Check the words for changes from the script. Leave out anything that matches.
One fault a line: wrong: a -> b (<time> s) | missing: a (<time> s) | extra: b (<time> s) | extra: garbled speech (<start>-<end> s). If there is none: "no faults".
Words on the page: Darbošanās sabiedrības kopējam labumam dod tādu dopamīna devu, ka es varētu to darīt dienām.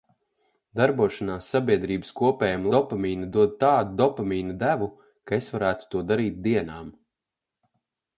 wrong: labumam -> dopamīna (2.8 s)